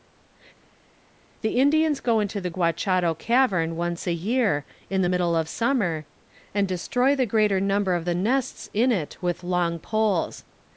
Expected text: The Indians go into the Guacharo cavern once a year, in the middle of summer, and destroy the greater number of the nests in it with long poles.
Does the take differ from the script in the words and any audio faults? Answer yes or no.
no